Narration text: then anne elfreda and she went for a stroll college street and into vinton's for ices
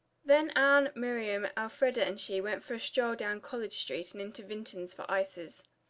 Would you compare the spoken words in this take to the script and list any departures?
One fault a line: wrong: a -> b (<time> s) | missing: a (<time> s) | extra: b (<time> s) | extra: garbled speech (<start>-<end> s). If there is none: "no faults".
extra: miriam (0.9 s)
extra: down (3.2 s)